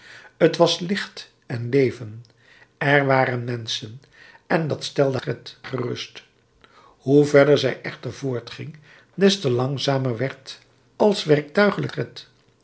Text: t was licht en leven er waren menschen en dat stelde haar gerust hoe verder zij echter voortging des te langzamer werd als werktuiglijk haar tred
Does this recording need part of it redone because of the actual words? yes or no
yes